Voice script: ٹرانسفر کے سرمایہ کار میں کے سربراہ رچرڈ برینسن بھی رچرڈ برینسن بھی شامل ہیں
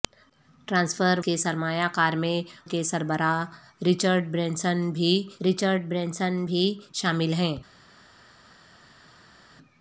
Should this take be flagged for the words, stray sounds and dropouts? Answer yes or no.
no